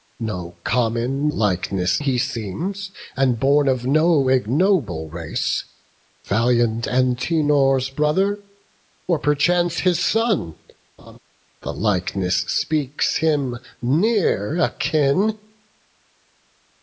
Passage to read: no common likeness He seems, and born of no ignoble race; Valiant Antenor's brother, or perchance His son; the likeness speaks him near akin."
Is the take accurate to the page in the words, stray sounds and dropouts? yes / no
no